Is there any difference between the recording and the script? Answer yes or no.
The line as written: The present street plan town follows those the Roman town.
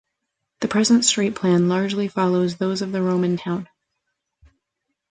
yes